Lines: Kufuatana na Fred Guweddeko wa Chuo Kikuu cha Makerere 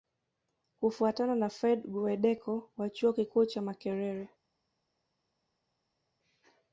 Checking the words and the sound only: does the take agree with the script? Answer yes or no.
yes